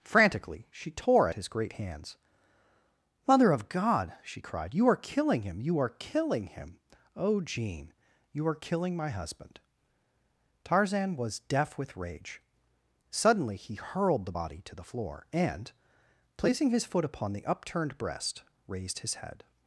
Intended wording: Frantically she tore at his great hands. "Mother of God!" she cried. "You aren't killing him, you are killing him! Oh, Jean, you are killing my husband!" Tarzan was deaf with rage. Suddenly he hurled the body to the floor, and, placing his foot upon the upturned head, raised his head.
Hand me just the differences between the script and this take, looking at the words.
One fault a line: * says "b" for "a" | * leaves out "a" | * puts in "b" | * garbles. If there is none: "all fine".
* says "are" for "aren't"
* says "breast" for "head"